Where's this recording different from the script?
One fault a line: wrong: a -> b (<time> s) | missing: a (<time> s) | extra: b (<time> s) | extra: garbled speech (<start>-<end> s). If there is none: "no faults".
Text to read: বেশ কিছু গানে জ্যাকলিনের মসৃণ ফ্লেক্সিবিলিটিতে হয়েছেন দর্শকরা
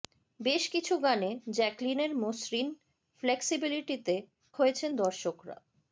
no faults